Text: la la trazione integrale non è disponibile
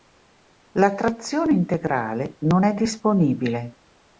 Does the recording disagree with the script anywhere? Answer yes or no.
yes